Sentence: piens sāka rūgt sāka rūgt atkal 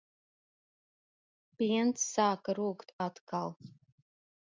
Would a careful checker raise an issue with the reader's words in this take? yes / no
yes